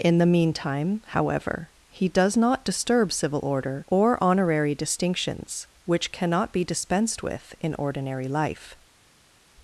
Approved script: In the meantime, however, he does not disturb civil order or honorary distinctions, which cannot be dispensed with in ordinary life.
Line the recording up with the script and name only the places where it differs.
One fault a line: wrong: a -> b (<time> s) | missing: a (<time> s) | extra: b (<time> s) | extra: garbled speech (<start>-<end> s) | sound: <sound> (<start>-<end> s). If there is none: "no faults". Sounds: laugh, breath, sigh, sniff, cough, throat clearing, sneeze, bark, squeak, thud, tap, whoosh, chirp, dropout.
no faults